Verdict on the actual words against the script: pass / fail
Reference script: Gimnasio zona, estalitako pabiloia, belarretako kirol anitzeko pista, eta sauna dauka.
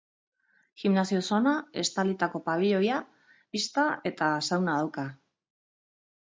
fail